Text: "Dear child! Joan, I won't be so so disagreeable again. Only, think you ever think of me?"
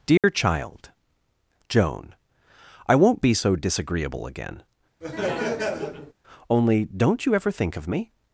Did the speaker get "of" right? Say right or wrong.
right